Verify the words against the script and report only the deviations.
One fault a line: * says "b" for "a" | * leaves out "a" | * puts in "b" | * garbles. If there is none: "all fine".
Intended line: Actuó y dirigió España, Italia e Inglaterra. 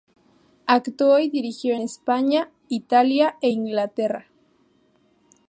all fine